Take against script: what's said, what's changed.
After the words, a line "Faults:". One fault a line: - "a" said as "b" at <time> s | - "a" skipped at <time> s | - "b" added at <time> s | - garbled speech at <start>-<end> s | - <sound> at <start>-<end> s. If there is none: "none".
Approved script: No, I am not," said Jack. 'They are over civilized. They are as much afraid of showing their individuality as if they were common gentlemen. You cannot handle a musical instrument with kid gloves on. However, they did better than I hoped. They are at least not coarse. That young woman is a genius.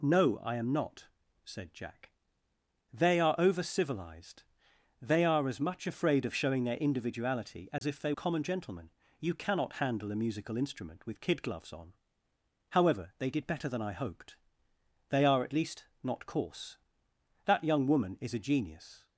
No, I am not," said Jack. 'They are over civilized. They are as much afraid of showing their individuality as if they common gentlemen. You cannot handle a musical instrument with kid gloves on. However, they did better than I hoped. They are at least not coarse. That young woman is a genius.
Faults:
- dropout at 7.8-7.8 s
- "were" skipped at 8.1 s